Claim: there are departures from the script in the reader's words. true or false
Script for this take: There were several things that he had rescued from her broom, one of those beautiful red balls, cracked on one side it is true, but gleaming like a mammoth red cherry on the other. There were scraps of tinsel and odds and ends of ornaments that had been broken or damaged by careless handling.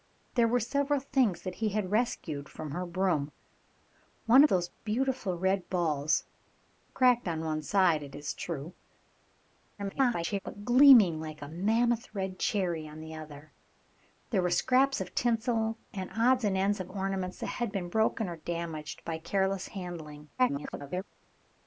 true